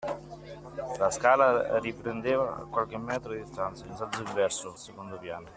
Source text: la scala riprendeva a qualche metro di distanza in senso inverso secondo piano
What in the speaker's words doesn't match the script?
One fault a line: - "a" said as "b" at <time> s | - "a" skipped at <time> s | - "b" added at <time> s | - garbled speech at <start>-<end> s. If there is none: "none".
none